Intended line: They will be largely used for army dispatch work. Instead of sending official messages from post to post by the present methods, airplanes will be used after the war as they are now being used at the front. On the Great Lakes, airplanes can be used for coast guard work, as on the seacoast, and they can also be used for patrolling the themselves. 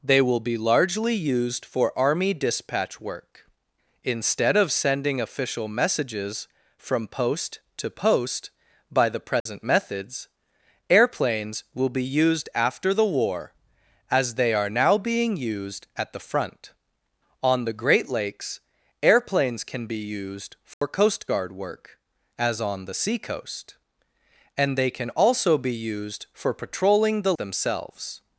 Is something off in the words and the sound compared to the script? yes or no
yes